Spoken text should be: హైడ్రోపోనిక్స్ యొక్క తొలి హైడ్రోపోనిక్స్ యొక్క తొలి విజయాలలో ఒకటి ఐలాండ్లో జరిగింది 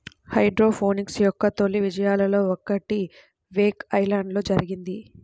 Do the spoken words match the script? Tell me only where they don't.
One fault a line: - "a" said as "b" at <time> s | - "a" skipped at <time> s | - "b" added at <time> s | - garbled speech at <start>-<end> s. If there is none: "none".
- "హైడ్రోపోనిక్స్ యొక్క తొలి" skipped at 1.8 s
- "వేక్" added at 3.5 s